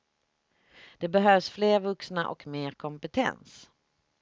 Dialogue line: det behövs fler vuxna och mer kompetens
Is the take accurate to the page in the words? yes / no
yes